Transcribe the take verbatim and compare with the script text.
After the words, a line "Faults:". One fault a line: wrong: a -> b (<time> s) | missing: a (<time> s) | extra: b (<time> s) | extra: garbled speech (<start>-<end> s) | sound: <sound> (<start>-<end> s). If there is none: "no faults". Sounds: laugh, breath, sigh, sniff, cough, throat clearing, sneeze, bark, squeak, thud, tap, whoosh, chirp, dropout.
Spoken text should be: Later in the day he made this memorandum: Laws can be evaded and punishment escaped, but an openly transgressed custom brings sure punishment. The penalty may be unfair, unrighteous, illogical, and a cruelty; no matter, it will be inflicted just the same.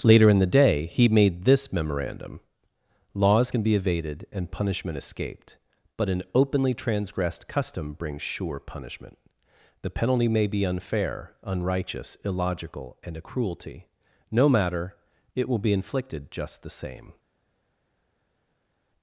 Later in the day he made this memorandum: Laws can be evaded and punishment escaped, but an openly transgressed custom brings sure punishment. The penalty may be unfair, unrighteous, illogical, and a cruelty; no matter, it will be inflicted just the same.
Faults:
no faults